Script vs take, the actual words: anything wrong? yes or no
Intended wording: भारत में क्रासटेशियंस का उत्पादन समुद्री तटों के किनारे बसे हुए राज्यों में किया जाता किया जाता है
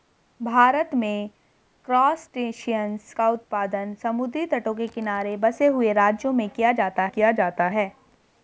no